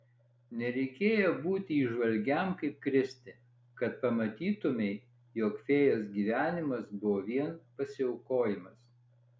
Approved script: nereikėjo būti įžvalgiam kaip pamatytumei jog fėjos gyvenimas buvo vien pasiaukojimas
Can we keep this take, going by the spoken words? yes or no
no